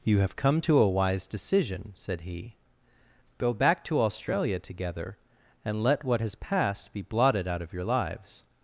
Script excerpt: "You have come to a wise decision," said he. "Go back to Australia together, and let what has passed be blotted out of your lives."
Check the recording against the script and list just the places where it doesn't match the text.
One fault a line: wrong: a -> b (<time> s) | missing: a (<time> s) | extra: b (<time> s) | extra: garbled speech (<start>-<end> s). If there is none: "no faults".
no faults